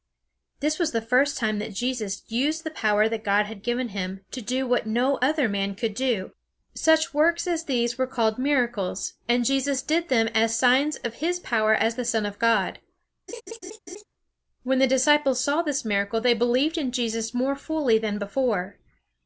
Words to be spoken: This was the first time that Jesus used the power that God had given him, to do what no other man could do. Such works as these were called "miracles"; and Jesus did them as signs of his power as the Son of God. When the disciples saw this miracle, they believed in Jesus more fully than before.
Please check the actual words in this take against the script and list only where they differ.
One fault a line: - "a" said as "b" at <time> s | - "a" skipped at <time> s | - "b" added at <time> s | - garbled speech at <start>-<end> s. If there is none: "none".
none